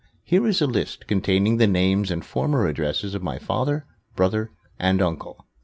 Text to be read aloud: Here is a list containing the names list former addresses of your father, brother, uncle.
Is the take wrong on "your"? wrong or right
wrong